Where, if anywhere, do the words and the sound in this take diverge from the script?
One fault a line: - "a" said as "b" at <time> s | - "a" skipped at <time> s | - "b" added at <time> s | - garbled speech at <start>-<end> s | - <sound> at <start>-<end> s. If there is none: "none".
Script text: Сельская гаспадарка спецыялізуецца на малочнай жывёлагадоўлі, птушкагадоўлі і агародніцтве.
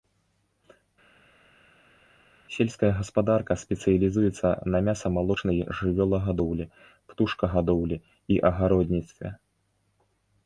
- "мяса" added at 4.9 s